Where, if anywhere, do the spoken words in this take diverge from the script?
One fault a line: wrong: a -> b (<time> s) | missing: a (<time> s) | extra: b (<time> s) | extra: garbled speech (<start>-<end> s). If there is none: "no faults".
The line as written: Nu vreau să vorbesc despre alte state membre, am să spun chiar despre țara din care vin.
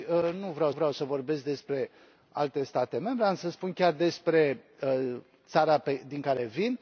extra: vreau (0.7 s)